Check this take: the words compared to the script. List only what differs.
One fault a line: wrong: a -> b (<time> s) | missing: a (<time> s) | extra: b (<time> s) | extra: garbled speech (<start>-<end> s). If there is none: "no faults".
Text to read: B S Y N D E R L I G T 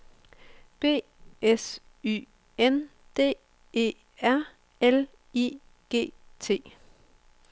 no faults